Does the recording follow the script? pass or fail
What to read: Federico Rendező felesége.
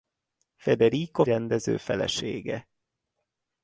pass